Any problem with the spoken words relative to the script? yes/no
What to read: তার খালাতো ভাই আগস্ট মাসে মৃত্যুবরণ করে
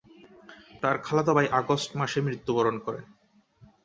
no